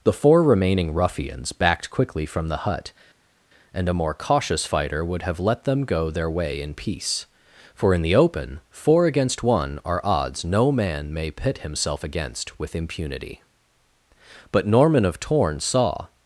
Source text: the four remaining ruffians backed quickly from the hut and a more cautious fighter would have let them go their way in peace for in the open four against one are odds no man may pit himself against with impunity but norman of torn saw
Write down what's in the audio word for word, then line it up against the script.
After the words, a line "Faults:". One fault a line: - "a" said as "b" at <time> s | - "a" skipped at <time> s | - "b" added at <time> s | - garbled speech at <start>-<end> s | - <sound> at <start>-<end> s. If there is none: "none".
the four remaining ruffians backed quickly from the hut and a more cautious fighter would have let them go their way in peace for in the open four against one are odds no man may pit himself against with impunity but norman of torn saw
Faults:
none